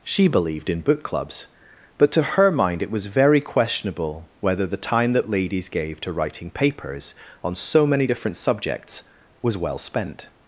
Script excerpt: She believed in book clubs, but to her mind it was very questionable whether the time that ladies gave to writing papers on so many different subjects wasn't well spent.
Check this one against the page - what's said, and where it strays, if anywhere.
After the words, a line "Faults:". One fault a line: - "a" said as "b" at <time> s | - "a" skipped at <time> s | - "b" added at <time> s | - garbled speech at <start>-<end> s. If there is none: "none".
She believed in book clubs, but to her mind it was very questionable whether the time that ladies gave to writing papers on so many different subjects was well spent.
Faults:
- "wasn't" said as "was" at 9.4 s